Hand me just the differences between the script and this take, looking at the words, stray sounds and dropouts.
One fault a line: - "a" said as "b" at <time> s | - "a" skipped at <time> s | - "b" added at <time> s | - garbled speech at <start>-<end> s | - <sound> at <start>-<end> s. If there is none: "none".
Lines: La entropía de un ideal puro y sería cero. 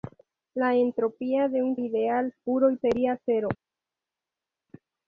none